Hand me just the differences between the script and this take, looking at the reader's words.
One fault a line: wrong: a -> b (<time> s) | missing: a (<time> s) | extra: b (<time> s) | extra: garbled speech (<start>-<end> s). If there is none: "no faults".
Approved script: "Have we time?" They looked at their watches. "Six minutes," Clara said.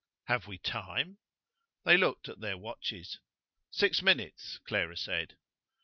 no faults